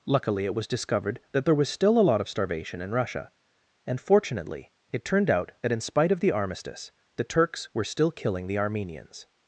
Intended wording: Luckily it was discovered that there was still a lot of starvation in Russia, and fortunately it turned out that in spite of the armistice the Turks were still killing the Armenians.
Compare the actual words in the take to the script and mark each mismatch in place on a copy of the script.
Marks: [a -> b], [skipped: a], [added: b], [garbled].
Luckily it was discovered that there was still a lot of starvation in Russia, and fortunately it turned out that in spite of the armistice the Turks were still killing the Armenians.